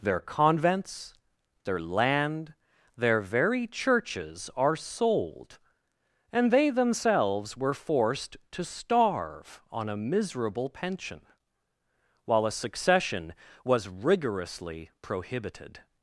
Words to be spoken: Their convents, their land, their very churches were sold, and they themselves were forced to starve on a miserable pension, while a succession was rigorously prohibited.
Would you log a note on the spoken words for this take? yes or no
yes